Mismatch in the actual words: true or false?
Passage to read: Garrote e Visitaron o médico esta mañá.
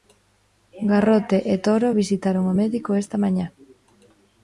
true